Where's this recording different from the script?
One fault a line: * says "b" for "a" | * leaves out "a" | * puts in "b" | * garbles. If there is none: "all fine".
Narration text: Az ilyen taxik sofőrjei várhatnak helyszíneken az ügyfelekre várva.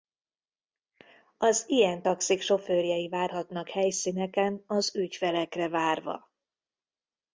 all fine